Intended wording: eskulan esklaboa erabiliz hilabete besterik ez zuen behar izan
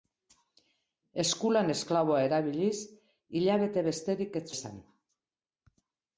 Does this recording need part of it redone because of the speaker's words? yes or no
yes